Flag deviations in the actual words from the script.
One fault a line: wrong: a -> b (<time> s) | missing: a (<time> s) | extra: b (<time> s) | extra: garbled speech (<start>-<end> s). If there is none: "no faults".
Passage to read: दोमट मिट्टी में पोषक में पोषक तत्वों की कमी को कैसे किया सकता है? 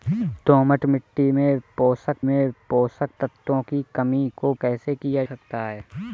no faults